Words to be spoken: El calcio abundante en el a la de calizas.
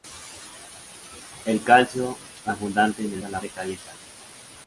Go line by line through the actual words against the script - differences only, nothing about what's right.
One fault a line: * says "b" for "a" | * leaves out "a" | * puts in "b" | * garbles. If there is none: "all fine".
all fine